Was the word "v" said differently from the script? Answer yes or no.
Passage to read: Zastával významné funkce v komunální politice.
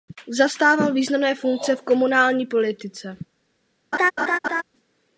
no